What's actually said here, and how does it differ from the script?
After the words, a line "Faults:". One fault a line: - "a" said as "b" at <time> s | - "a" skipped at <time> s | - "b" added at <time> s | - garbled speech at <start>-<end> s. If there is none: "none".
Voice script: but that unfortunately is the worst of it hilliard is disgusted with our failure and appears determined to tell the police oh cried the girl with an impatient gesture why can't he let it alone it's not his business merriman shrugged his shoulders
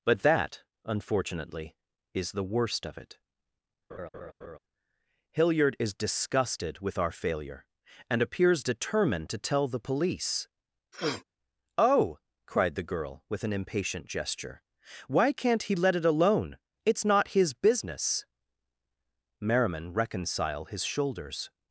but that unfortunately is the worst of it hilliard is disgusted with our failure and appears determined to tell the police oh cried the girl with an impatient gesture why can't he let it alone it's not his business merriman reconcile his shoulders
Faults:
- "shrugged" said as "reconcile" at 19.9 s